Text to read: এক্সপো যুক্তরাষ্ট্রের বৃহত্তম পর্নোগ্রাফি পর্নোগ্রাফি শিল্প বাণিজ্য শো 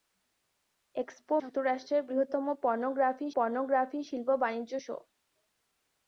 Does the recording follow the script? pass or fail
pass